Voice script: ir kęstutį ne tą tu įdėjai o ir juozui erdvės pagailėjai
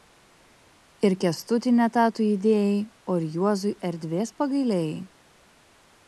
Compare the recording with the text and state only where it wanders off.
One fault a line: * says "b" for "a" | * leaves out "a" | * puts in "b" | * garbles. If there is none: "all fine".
all fine